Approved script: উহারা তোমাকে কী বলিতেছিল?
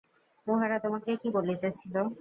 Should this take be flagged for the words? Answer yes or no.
no